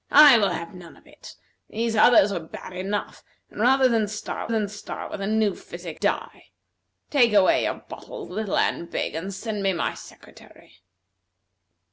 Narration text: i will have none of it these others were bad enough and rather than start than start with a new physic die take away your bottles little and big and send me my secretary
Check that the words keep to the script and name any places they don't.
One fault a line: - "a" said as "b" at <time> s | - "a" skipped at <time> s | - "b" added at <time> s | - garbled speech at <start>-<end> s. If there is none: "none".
none